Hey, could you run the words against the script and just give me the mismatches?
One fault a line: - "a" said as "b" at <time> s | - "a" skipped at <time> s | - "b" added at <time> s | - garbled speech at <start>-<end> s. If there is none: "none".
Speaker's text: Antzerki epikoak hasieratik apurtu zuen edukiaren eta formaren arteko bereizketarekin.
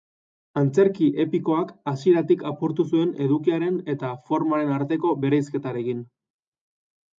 none